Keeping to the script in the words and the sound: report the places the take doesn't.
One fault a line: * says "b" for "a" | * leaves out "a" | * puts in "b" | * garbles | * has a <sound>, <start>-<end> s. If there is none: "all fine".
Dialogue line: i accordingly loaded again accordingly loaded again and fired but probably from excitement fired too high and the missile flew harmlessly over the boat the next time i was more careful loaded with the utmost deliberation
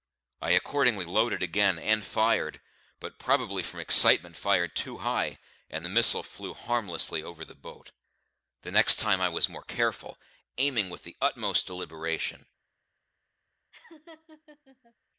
* leaves out "accordingly loaded again"
* says "aiming" for "loaded"
* has a laugh, 13.7-14.9 s